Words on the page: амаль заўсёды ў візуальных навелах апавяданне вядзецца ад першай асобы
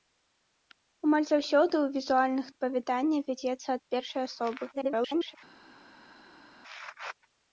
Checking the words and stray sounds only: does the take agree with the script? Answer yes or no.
no